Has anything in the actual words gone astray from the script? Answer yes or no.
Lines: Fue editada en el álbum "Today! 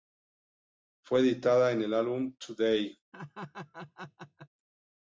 no